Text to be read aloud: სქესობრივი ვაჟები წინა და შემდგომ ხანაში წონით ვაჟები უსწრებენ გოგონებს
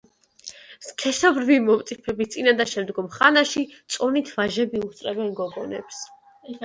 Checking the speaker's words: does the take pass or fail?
fail